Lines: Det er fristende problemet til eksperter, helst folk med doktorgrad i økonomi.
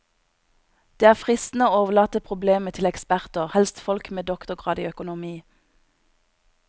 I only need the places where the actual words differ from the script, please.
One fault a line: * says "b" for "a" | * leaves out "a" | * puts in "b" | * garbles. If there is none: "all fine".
* puts in "å overlate"